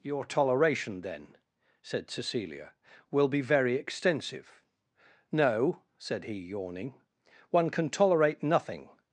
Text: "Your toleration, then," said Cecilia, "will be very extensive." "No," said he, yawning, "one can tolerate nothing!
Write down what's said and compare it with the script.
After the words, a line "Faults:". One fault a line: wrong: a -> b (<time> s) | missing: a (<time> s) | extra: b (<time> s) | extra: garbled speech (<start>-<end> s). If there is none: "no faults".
"Your toleration, then," said Cecilia, "will be very extensive." "No," said he, yawning, "one can tolerate nothing!
Faults:
no faults